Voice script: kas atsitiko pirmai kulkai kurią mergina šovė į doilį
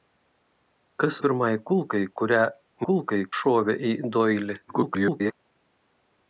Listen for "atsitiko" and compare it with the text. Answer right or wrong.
wrong